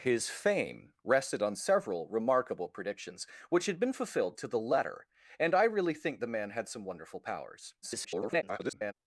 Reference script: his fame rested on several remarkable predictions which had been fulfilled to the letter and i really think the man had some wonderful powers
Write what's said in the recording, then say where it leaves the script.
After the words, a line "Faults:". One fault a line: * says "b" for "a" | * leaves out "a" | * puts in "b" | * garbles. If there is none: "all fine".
his fame rested on several remarkable predictions which had been fulfilled to the letter and i really think the man had some wonderful powers [garbled]
Faults:
* garbles